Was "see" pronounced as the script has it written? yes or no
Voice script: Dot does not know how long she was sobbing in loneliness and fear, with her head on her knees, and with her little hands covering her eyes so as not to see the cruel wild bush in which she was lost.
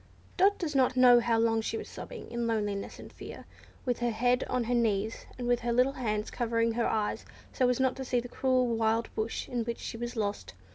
yes